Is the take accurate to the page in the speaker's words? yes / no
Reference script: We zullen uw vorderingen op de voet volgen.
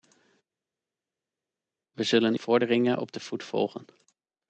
no